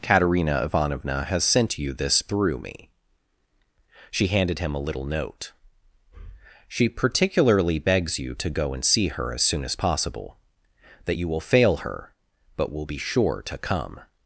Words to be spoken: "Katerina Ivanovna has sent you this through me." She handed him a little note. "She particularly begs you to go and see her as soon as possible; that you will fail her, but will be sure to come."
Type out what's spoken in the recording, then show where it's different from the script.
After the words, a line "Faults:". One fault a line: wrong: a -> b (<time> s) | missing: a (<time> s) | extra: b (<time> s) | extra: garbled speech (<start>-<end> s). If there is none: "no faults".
"Katerina Ivanovna has sent you this through me." She handed him a little note. "She particularly begs you to go and see her as soon as possible; that you will fail her, but will be sure to come."
Faults:
no faults